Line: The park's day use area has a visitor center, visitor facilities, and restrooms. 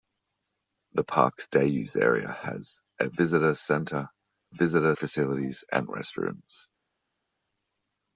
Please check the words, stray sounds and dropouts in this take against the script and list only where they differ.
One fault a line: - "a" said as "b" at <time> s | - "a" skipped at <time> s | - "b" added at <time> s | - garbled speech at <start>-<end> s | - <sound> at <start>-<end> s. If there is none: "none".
none